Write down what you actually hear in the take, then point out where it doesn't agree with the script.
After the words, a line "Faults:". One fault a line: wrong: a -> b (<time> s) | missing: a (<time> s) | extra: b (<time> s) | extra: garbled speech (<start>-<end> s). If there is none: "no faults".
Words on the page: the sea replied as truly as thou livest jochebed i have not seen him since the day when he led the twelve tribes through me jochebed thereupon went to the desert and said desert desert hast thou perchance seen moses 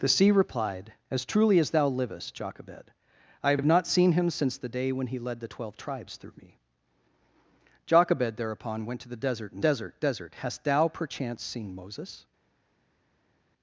the sea replied as truly as thou livest jochebed i have have not seen him since the day when he led the twelve tribes through me jochebed thereupon went to the desert and desert desert hast thou perchance seen moses
Faults:
extra: have (3.6 s)
missing: said (9.7 s)